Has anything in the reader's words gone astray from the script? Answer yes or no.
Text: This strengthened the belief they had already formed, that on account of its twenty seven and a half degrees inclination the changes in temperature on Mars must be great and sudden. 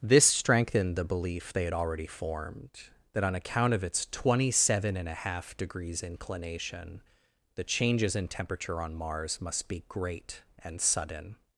no